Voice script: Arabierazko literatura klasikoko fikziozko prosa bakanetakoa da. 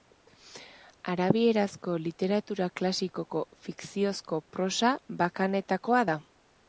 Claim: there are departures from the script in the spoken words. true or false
false